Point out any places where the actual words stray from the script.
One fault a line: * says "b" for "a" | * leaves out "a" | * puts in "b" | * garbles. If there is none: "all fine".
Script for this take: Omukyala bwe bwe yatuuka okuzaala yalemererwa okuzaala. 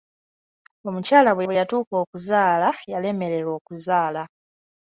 all fine